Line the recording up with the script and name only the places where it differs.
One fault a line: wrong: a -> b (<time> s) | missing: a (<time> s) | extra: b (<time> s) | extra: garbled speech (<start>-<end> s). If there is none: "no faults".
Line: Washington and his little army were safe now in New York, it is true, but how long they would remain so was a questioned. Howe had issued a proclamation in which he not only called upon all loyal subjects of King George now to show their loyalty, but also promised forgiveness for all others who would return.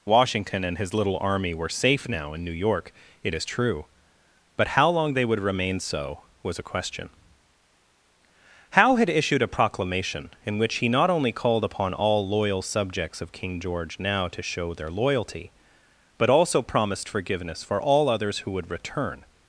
wrong: questioned -> question (6.6 s)